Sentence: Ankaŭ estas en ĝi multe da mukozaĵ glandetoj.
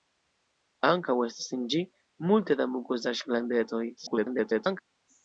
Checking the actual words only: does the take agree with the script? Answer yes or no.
no